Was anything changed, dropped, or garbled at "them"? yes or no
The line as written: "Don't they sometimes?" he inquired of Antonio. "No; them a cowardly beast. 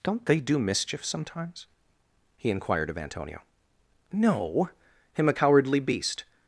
yes